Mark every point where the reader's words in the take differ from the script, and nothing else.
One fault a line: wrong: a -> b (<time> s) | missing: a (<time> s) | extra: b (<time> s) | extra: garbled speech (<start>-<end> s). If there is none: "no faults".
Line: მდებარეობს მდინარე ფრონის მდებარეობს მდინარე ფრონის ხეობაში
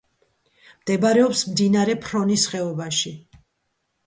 missing: მდებარეობს მდინარე ფრონის (2.5 s)